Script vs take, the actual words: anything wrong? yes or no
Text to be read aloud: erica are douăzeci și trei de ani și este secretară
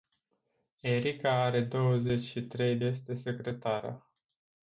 yes